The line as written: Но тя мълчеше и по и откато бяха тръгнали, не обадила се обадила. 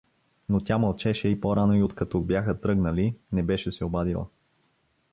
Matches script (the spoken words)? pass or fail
fail